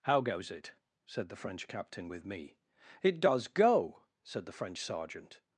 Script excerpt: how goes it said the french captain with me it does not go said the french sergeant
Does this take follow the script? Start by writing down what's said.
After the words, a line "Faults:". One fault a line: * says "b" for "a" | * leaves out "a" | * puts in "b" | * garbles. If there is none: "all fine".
how goes it said the french captain with me it does go said the french sergeant
Faults:
* leaves out "not"